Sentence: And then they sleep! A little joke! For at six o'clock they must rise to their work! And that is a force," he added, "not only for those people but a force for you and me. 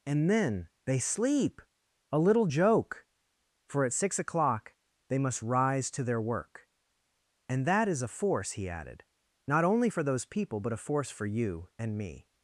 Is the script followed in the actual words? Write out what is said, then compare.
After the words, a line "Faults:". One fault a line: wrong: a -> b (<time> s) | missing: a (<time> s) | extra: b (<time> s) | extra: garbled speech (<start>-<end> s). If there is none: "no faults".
And then they sleep! A little joke! For at six o'clock they must rise to their work! And that is a force," he added, "not only for those people but a force for you and me.
Faults:
no faults